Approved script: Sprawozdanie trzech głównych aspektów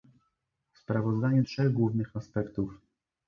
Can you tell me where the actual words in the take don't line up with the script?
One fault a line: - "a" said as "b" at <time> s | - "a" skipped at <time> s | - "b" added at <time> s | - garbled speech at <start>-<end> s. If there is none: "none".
none